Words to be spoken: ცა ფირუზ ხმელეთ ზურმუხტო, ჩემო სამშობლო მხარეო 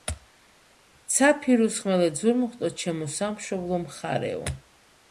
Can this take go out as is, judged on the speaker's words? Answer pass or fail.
pass